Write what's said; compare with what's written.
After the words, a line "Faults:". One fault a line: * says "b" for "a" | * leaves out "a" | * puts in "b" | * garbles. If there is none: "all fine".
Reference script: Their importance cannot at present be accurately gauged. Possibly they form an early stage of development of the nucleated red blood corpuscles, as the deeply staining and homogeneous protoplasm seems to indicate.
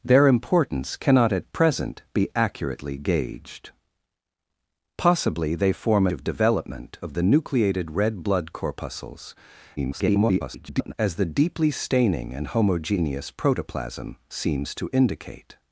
Their importance cannot at present be accurately gauged. Possibly they form of development of the nucleated red blood corpuscles, [garbled] as the deeply staining and homogeneous protoplasm seems to indicate.
Faults:
* leaves out "an early stage"
* garbles